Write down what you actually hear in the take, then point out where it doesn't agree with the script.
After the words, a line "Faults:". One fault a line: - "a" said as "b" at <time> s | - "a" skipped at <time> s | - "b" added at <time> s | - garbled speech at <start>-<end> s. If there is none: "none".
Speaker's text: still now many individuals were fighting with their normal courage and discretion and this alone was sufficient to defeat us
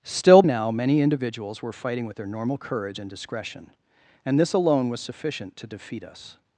still now many individuals were fighting with their normal courage and discretion and this alone was sufficient to defeat us
Faults:
none